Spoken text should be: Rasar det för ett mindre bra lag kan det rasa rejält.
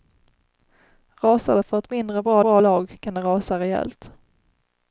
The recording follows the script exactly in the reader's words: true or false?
false